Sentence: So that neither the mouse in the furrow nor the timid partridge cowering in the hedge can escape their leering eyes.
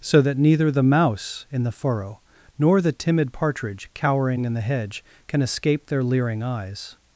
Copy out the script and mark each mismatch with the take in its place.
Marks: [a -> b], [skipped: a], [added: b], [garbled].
So that neither the mouse in the furrow nor the timid partridge cowering in the hedge can escape their leering eyes.